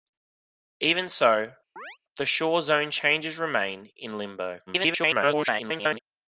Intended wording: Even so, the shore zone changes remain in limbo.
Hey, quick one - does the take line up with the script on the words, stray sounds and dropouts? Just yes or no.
no